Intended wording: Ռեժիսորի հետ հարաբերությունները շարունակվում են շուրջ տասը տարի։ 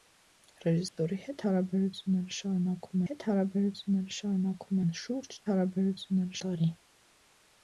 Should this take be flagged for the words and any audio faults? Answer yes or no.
yes